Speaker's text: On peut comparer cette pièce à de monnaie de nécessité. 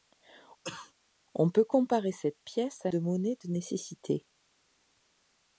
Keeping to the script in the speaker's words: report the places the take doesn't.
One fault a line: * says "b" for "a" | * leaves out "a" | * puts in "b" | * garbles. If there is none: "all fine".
all fine